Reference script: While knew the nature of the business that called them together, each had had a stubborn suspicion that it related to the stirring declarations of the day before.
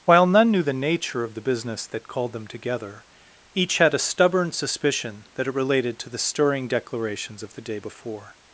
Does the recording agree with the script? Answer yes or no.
no